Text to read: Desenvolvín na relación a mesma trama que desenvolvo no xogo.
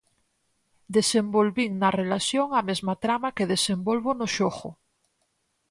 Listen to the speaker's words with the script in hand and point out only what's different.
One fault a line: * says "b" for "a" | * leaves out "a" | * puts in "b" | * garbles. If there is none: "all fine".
all fine